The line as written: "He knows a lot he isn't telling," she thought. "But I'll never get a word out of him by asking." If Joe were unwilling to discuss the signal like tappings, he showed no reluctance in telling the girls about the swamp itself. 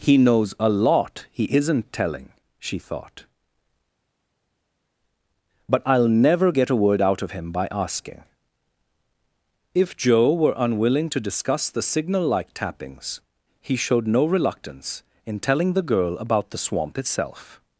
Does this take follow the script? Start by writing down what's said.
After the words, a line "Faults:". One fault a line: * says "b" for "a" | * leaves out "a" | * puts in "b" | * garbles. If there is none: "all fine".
"He knows a lot he isn't telling," she thought. "But I'll never get a word out of him by asking." If Joe were unwilling to discuss the signal like tappings, he showed no reluctance in telling the girl about the swamp itself.
Faults:
* says "girl" for "girls"